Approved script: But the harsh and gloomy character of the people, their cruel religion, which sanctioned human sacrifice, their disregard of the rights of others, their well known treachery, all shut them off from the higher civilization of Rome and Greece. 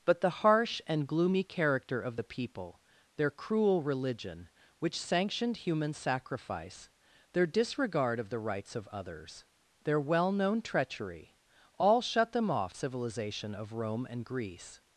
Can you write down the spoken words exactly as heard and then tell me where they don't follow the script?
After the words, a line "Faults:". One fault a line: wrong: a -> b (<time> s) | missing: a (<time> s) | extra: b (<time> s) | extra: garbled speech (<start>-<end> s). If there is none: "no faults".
But the harsh and gloomy character of the people, their cruel religion, which sanctioned human sacrifice, their disregard of the rights of others, their well known treachery, all shut them off civilization of Rome and Greece.
Faults:
missing: from the higher (12.7 s)